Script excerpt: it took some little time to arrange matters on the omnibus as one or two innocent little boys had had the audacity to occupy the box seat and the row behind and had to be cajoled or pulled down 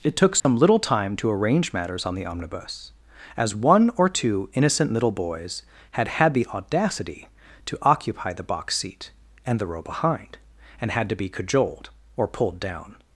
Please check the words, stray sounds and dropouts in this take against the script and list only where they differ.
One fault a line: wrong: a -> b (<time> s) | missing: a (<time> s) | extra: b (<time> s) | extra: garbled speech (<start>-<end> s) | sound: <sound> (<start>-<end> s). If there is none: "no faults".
sound: dropout (0.4-0.4 s)